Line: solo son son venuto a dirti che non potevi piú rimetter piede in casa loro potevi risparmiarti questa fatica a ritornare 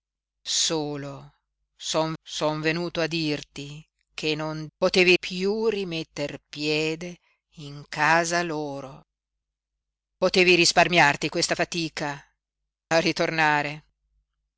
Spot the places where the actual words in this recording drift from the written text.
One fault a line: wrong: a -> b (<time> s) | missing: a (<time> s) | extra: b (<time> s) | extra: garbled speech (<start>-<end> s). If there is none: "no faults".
no faults